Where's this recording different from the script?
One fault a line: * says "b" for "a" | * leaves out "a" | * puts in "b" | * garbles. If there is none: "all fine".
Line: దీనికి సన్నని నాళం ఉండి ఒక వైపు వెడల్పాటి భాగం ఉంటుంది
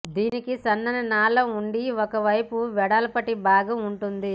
all fine